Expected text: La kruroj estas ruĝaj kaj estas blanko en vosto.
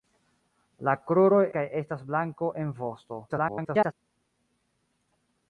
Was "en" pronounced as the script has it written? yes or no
yes